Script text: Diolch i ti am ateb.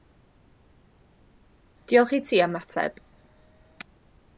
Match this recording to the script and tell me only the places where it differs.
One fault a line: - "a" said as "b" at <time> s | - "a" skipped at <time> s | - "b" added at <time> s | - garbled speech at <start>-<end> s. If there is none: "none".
none